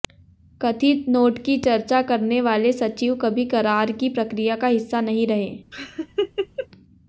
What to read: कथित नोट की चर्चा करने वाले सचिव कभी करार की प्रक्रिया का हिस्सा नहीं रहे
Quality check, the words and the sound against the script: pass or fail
fail